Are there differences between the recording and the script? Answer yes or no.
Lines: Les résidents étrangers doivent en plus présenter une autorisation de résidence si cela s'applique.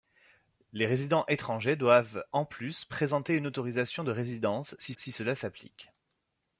yes